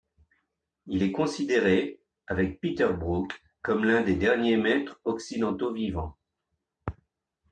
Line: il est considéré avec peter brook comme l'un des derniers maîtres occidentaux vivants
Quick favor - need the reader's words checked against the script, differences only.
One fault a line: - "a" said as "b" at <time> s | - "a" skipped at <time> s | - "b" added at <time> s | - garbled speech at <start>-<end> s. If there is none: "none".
none